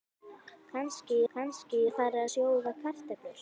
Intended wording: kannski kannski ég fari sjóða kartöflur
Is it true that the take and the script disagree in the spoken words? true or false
false